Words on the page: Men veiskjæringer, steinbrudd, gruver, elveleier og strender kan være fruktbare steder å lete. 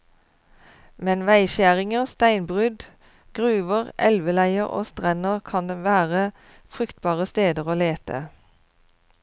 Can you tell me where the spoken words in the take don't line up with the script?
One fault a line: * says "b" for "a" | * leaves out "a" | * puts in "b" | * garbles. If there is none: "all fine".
all fine